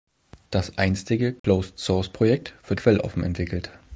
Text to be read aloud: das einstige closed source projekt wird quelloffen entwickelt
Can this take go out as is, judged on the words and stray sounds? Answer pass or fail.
fail